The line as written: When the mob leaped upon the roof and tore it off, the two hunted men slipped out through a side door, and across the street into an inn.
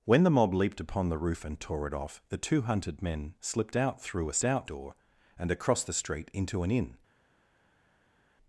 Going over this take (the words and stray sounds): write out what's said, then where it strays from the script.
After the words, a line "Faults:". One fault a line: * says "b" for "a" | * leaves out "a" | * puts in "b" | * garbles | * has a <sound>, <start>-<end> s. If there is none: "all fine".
When the mob leaped upon the roof and tore it off, the two hunted men slipped out through a out door, and across the street into an inn.
Faults:
* says "out" for "side"